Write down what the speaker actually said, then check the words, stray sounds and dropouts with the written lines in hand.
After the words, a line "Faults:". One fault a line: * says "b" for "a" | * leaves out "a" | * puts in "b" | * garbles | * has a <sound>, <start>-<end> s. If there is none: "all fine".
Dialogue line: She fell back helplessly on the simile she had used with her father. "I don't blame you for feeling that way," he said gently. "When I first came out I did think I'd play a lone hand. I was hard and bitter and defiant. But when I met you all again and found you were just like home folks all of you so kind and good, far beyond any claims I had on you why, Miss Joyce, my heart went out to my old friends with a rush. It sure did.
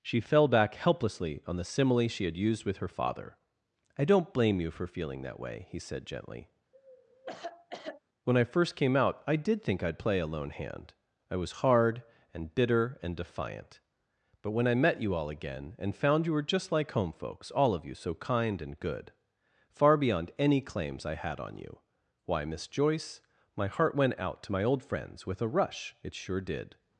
She fell back helplessly on the simile she had used with her father. "I don't blame you for feeling that way," he said gently. "When I first came out I did think I'd play a lone hand. I was hard and bitter and defiant. But when I met you all again and found you were just like home folks all of you so kind and good, far beyond any claims I had on you why, Miss Joyce, my heart went out to my old friends with a rush. It sure did.
Faults:
* has a cough, 6.7-8.0 s